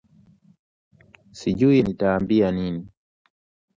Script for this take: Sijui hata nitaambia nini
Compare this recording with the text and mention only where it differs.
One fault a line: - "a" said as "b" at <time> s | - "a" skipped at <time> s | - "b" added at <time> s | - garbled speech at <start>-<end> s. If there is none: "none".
- "hata" skipped at 1.8 s